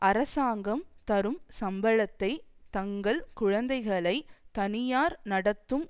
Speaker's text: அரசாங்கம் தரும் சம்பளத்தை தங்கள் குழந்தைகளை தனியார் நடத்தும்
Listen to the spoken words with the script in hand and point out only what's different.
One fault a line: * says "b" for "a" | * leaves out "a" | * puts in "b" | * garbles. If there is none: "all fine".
all fine